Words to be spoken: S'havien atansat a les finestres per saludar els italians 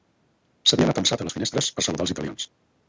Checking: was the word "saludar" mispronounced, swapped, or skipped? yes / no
no